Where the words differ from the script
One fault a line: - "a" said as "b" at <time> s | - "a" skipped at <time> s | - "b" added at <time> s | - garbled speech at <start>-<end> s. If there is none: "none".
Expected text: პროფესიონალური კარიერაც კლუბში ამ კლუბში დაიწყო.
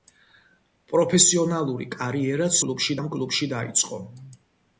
none